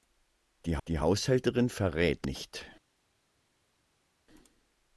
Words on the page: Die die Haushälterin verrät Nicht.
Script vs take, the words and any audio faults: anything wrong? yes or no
no